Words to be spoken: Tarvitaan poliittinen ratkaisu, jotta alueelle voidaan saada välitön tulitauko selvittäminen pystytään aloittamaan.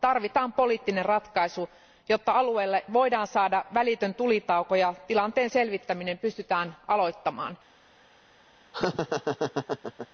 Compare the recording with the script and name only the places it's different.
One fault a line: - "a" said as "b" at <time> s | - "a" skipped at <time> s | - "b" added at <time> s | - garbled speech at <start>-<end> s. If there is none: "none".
- "ja tilanteen" added at 4.7 s